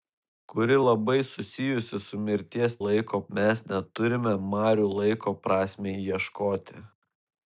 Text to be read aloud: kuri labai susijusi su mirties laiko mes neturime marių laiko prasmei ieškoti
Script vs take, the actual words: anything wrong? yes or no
no